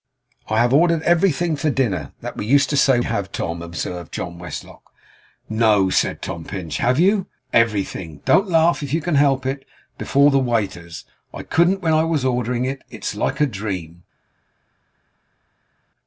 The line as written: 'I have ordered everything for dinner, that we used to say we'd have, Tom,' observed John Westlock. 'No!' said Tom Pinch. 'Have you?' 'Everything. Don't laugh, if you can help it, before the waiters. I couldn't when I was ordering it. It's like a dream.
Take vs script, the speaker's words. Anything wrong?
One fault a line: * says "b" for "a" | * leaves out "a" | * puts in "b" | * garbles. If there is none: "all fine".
* leaves out "we'd"